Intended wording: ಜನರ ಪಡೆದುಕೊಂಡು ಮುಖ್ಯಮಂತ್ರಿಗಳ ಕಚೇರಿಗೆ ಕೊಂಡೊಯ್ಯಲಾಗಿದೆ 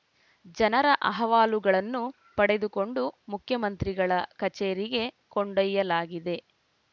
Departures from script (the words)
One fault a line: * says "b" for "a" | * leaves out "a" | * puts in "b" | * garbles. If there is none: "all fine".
* puts in "ಅಹವಾಲುಗಳನ್ನು"